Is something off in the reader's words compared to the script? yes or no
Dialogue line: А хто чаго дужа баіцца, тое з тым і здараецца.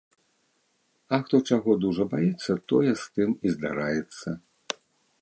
no